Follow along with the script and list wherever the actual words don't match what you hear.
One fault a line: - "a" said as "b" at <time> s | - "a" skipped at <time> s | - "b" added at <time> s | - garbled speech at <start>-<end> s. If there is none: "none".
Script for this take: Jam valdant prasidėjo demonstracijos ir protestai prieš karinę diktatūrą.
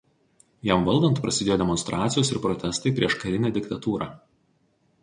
none